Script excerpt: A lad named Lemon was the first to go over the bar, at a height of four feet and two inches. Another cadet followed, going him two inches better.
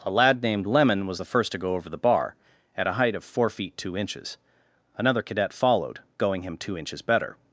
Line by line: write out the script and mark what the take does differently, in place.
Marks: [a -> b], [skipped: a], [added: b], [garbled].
A lad named Lemon was the first to go over the bar, at a height of four feet [skipped: and] two inches. Another cadet followed, going him two inches better.